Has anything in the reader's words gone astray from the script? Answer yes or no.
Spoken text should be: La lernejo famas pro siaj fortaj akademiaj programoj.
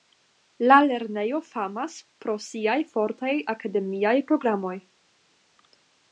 no